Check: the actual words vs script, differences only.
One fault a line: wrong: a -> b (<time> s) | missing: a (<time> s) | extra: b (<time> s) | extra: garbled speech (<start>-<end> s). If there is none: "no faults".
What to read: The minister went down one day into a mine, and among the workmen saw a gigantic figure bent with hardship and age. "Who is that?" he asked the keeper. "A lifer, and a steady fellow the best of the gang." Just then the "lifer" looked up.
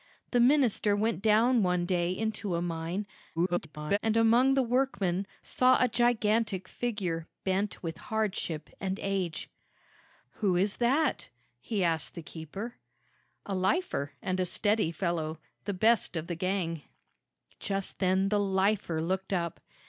extra: garbled speech (3.4-4.0 s)